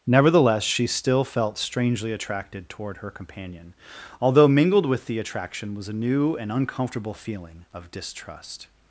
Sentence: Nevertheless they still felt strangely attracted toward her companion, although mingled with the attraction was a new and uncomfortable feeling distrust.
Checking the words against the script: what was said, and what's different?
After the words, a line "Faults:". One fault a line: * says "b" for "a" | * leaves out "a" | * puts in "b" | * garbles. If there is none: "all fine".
Nevertheless she still felt strangely attracted toward her companion, although mingled with the attraction was a new and uncomfortable feeling of distrust.
Faults:
* says "she" for "they"
* puts in "of"